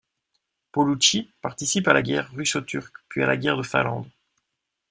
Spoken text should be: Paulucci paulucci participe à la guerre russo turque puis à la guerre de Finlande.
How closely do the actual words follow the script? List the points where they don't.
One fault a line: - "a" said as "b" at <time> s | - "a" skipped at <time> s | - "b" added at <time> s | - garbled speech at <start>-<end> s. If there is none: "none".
- "paulucci" skipped at 1.3 s